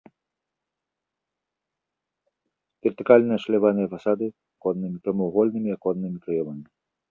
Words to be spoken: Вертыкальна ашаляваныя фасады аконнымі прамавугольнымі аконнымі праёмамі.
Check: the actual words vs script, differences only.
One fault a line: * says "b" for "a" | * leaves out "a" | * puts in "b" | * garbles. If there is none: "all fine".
all fine